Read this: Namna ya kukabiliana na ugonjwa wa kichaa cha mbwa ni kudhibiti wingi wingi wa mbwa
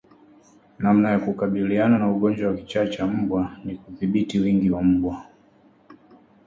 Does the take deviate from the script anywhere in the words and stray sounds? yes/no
yes